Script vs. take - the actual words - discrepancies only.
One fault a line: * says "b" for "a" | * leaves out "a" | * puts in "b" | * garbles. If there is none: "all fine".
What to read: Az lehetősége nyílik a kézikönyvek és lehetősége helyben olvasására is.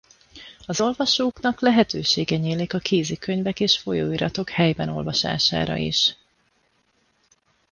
* puts in "olvasóknak"
* says "folyóiratok" for "lehetősége"